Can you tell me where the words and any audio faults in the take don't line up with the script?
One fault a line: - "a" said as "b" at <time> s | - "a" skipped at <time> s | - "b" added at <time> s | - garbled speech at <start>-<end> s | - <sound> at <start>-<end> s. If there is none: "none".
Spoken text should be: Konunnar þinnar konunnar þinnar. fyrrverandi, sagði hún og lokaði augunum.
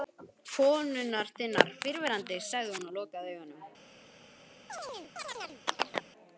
- "konunnar þinnar" skipped at 1.7 s
- chirp at 4.7-6.1 s